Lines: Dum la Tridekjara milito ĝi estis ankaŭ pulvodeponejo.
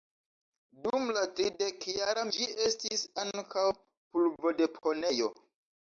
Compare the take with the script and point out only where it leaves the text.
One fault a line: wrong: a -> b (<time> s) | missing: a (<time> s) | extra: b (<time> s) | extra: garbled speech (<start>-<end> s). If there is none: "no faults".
missing: milito (2.2 s)